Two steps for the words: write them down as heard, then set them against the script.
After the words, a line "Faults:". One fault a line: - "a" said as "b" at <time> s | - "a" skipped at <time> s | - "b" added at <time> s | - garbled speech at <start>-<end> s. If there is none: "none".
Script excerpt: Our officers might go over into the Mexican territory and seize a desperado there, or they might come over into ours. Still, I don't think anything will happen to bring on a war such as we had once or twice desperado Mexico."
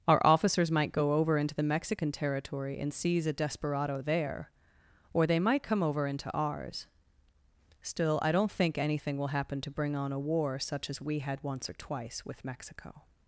Our officers might go over into the Mexican territory and seize a desperado there, or they might come over into ours. Still, I don't think anything will happen to bring on a war such as we had once or twice with Mexico."
Faults:
- "desperado" said as "with" at 12.2 s